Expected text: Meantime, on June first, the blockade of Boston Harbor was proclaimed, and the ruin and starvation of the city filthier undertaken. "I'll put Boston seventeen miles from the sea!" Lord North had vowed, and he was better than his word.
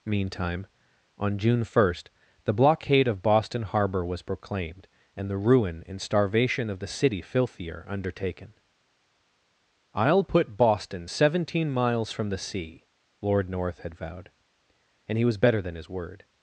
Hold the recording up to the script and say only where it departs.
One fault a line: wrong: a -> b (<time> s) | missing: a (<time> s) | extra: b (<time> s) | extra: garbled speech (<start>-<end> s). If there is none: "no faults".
no faults